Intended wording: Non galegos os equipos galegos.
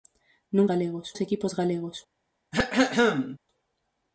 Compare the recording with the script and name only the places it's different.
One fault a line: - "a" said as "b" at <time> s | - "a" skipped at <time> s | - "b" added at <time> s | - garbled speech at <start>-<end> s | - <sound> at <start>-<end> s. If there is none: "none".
- throat clearing at 2.5-3.4 s